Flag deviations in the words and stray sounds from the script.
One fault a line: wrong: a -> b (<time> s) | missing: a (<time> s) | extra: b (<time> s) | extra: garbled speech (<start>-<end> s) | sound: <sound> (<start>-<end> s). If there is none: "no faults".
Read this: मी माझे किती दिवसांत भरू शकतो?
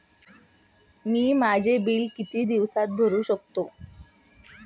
extra: बिल (1.8 s)